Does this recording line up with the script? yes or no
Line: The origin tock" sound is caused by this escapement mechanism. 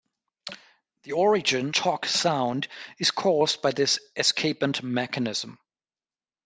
yes